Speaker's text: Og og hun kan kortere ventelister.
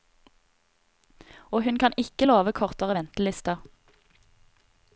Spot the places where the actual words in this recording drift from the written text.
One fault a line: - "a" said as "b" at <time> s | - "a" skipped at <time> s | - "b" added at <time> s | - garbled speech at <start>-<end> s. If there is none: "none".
- "og" skipped at 1.6 s
- "ikke love" added at 2.0 s